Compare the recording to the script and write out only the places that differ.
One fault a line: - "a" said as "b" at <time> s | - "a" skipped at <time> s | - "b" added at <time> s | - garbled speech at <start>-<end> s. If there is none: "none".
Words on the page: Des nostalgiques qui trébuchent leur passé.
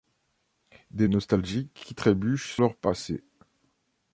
none